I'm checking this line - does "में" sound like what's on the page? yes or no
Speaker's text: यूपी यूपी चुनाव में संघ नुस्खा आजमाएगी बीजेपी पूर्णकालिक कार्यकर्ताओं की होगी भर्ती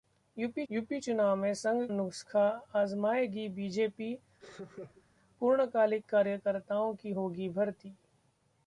yes